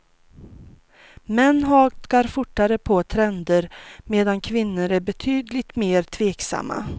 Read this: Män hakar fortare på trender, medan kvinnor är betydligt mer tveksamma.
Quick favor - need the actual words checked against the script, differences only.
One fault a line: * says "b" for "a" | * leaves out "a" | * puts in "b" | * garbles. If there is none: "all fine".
all fine